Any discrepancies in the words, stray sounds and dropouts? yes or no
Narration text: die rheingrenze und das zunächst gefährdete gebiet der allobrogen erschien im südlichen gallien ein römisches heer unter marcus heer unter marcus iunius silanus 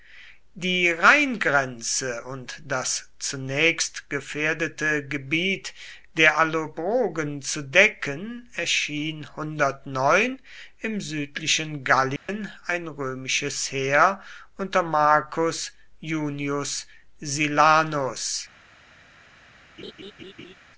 yes